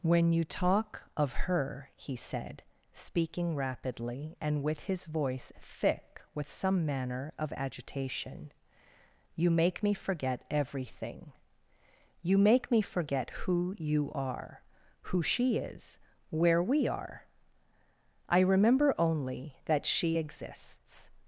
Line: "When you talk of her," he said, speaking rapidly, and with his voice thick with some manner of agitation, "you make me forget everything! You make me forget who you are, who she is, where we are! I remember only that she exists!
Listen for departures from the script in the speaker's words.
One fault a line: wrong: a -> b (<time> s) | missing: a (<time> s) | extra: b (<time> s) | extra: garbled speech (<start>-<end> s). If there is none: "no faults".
no faults